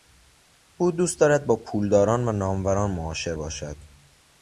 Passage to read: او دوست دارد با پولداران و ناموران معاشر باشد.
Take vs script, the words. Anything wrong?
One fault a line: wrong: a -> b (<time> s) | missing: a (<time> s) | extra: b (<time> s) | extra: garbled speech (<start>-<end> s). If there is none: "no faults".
no faults